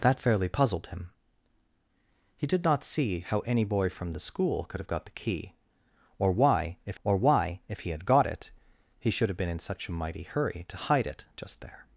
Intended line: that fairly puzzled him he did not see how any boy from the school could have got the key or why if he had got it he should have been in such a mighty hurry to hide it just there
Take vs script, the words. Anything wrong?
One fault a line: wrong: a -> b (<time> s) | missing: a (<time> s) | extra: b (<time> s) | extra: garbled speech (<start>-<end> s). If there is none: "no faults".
extra: or why if (7.0 s)